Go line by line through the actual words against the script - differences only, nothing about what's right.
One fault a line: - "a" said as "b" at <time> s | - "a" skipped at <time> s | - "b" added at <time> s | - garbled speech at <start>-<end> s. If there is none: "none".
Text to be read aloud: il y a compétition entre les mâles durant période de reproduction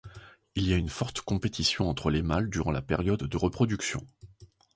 - "une forte" added at 0.8 s
- "la" added at 2.7 s